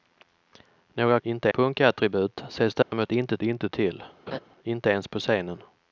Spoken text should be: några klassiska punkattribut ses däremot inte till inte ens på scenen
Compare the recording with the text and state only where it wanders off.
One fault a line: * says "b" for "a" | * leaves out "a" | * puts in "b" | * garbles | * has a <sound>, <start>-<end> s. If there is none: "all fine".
* says "inte" for "klassiska"
* has a dropout, 2.8-2.9 s
* puts in "inte"
* has a laugh, 4.3-4.4 s